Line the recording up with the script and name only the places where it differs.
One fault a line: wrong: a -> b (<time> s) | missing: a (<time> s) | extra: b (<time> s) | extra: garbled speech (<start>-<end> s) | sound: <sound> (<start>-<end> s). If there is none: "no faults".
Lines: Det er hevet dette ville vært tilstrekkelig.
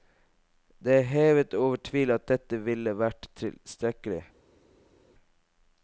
extra: over tvil at (1.5 s)